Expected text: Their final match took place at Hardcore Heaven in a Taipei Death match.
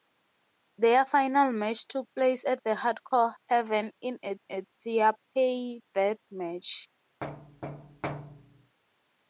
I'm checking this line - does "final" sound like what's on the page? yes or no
yes